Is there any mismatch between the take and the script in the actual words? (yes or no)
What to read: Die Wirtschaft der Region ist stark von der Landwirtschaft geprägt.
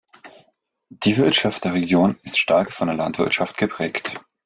no